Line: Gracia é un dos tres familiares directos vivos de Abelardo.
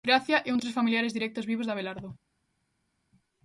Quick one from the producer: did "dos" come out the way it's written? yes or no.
no